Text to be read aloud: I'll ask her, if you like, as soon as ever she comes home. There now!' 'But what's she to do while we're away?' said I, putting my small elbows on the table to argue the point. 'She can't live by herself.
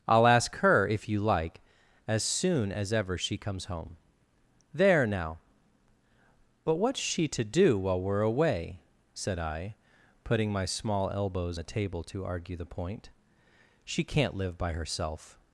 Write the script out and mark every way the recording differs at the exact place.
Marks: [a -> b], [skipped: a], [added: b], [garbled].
I'll ask her, if you like, as soon as ever she comes home. There now!' 'But what's she to do while we're away?' said I, putting my small elbows [skipped: on] the table to argue the point. 'She can't live by herself.